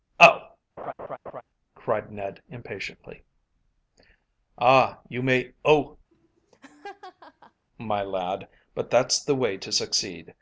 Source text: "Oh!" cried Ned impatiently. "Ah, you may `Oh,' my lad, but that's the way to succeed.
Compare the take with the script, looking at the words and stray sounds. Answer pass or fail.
fail